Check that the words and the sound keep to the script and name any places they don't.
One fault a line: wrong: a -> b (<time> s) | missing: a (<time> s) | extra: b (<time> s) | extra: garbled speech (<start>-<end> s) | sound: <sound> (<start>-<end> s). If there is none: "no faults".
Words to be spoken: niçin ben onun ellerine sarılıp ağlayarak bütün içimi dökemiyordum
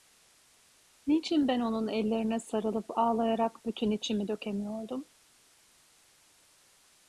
no faults